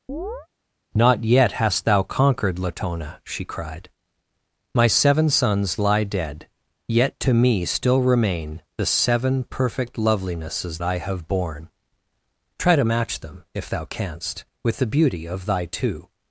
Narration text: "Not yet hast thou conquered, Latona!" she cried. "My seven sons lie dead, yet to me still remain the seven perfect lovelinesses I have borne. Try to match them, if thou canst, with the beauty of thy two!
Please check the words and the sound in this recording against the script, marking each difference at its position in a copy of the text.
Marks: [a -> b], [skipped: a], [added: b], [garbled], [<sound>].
[chirp] "Not yet hast thou conquered, Latona!" she cried. "My seven sons lie dead, yet to me still remain the seven perfect lovelinesses I have borne. Try to match them, if thou canst, with the beauty of thy two!